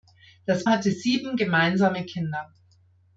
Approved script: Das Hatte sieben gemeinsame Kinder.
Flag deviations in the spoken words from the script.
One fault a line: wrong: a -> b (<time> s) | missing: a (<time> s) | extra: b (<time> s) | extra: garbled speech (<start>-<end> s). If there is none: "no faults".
no faults